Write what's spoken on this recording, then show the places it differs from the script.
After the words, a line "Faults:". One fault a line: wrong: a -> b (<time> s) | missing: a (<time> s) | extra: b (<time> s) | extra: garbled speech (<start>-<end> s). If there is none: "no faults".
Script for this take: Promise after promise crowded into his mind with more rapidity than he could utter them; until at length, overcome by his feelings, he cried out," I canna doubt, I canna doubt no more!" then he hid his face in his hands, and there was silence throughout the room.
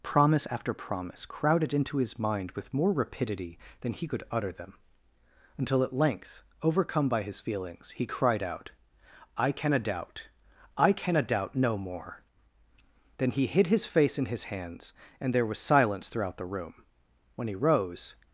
Promise after promise crowded into his mind with more rapidity than he could utter them; until at length, overcome by his feelings, he cried out," I canna doubt, I canna doubt no more!" then he hid his face in his hands, and there was silence throughout the room. When he rose
Faults:
extra: When he rose (17.4 s)